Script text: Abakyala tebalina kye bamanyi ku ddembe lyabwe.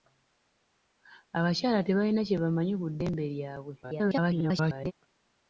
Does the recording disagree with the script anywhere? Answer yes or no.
yes